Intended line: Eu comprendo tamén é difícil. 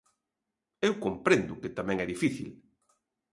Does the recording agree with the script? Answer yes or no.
no